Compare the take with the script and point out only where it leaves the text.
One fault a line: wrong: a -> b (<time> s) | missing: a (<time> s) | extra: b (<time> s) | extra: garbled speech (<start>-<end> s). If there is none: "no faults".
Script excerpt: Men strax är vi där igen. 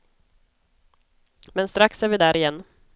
no faults